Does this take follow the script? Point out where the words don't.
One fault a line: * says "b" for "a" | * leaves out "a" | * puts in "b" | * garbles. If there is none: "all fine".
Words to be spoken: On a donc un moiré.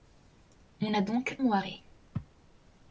* leaves out "un"